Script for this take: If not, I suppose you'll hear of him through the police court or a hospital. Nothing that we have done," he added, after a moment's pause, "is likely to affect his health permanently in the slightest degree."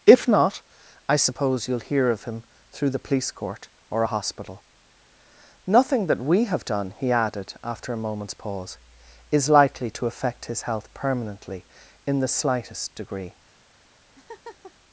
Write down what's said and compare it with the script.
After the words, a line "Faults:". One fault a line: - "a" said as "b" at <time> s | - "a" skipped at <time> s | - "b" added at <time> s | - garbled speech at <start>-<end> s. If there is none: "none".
If not, I suppose you'll hear of him through the police court or a hospital. Nothing that we have done," he added, after a moment's pause, "is likely to affect his health permanently in the slightest degree."
Faults:
none